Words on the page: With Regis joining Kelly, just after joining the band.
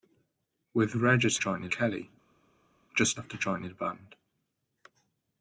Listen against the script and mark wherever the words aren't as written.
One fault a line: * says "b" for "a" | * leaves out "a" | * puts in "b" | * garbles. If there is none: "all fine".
all fine